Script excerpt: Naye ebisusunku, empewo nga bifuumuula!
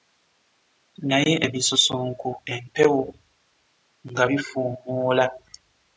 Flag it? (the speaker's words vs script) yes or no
no